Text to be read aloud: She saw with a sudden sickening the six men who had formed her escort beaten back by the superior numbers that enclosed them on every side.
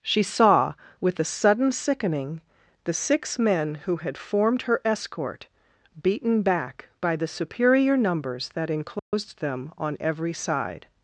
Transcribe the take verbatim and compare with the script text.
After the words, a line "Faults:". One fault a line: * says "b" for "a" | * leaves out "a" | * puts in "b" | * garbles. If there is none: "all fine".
She saw with a sudden sickening the six men who had formed her escort beaten back by the superior numbers that enclosed them on every side.
Faults:
all fine